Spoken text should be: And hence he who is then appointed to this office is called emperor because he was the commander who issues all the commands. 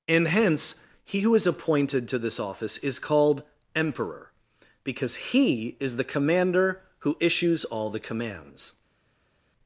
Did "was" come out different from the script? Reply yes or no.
yes